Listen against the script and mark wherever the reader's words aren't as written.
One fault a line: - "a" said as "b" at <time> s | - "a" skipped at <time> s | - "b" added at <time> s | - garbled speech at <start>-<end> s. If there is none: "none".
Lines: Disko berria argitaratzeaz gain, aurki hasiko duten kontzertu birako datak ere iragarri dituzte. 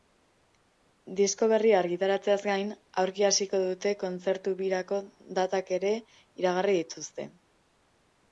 none